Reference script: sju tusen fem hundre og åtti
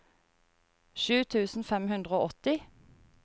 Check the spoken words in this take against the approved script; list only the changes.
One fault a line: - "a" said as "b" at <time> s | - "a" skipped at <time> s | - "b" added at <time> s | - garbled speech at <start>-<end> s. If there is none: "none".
none